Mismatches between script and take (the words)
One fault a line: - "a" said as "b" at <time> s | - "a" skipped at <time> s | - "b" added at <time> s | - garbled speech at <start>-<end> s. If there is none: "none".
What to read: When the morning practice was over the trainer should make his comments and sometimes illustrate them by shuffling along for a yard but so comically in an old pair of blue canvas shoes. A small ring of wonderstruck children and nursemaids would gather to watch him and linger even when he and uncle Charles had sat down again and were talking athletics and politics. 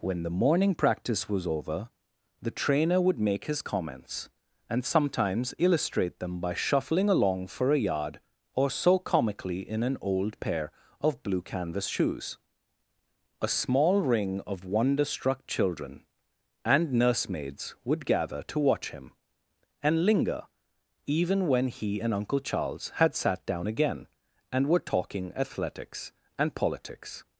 - "should" said as "would" at 3.0 s
- "but" said as "or" at 8.6 s